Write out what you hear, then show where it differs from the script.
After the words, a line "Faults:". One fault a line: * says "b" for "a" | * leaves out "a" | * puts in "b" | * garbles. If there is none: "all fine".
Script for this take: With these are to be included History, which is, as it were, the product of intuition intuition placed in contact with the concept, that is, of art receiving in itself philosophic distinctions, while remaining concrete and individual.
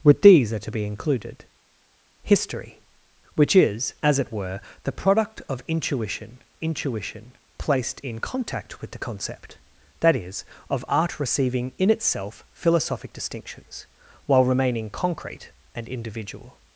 With these are to be included History, which is, as it were, the product of intuition intuition placed in contact with the concept, that is, of art receiving in itself philosophic distinctions, while remaining concrete and individual.
Faults:
all fine